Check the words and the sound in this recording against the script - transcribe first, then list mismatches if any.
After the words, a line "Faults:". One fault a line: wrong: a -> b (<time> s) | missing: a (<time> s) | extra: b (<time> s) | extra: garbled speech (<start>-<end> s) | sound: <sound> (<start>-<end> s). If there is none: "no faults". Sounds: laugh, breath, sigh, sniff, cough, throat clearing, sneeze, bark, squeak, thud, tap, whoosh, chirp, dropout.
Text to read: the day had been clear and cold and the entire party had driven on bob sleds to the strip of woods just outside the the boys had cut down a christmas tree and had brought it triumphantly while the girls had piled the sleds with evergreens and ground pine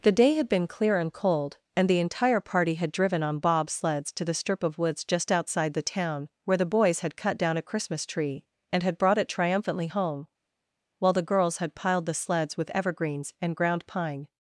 the day had been clear and cold and the entire party had driven on bob sleds to the strip of woods just outside the town where the boys had cut down a christmas tree and had brought it triumphantly home while the girls had piled the sleds with evergreens and ground pine
Faults:
extra: town where (5.8 s)
extra: home (9.9 s)